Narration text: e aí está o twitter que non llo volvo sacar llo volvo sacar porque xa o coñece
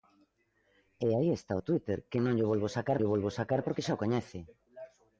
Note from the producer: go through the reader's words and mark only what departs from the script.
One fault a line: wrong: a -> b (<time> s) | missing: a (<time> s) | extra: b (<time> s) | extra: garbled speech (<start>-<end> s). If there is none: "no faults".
no faults